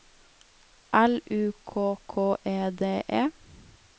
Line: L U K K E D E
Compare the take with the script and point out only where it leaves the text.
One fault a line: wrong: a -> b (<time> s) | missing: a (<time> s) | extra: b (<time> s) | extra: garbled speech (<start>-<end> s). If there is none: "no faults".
no faults